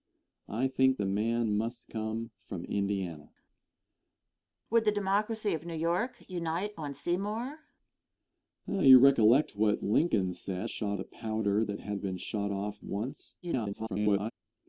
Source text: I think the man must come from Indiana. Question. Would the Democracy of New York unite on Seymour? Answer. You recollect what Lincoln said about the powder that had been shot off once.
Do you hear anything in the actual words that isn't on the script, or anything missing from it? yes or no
yes